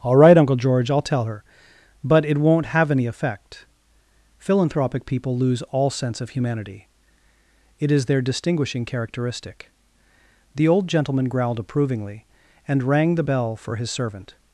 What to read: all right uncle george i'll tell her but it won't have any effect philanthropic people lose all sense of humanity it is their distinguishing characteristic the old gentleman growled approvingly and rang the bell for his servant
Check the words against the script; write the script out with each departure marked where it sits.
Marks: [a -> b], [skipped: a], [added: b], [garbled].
all right uncle george i'll tell her but it won't have any effect philanthropic people lose all sense of humanity it is their distinguishing characteristic the old gentleman growled approvingly and rang the bell for his servant